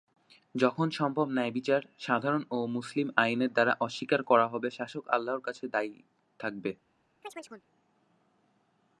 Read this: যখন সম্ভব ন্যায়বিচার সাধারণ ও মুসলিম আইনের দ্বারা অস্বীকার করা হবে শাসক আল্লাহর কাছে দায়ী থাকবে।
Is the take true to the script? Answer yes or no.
yes